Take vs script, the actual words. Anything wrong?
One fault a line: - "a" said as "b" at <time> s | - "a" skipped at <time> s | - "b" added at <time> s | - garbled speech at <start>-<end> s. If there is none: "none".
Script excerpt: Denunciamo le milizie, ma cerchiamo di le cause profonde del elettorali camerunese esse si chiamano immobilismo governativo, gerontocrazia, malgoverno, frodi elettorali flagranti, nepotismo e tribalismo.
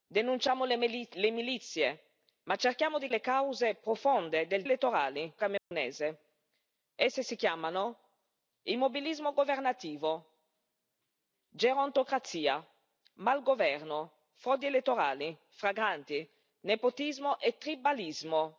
none